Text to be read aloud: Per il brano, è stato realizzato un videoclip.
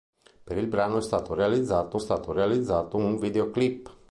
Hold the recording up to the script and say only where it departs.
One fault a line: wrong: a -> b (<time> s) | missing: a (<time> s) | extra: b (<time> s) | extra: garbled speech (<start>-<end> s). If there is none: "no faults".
extra: stato realizzato (2.0 s)